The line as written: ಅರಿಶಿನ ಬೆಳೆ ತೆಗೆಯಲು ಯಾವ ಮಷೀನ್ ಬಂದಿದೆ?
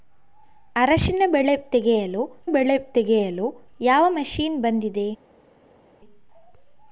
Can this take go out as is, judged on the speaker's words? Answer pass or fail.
fail